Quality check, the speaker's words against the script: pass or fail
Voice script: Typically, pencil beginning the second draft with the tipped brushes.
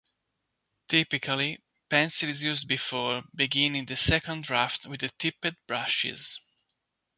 fail